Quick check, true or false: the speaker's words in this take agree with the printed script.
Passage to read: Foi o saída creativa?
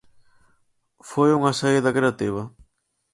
false